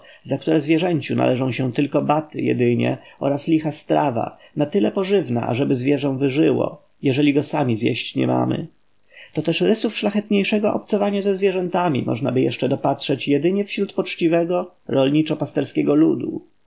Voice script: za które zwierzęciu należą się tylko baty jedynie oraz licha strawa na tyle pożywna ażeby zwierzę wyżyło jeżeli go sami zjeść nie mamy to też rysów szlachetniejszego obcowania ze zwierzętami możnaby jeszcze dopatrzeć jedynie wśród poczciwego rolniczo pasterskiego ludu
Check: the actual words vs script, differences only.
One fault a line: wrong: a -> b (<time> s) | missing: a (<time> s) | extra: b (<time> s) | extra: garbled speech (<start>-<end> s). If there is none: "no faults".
no faults